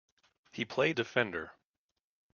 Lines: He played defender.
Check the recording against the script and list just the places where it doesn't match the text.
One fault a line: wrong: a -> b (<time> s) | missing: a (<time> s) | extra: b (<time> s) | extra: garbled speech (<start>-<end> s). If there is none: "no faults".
no faults